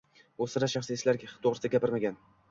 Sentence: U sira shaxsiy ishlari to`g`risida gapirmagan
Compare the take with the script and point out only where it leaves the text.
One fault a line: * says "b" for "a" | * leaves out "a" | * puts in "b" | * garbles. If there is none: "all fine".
all fine